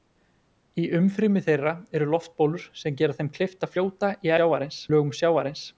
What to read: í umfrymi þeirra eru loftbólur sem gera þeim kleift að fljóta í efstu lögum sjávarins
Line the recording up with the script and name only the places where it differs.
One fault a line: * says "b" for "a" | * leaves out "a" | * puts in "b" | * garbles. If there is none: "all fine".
* says "sjávarins" for "efstu"